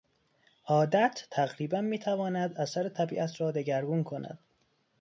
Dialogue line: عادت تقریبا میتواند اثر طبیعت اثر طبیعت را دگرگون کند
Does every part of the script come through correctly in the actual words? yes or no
no